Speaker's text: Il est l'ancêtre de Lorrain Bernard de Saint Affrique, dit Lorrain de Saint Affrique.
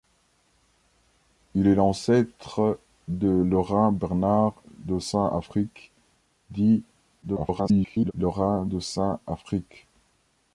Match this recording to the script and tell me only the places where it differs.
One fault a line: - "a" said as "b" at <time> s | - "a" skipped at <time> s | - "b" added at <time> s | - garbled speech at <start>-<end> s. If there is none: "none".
- garbled speech at 7.2-8.1 s